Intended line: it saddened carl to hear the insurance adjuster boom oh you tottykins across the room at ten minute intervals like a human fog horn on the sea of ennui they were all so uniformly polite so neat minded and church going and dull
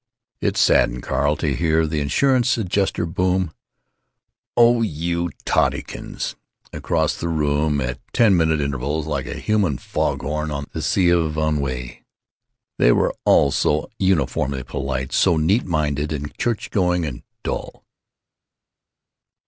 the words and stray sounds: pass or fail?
pass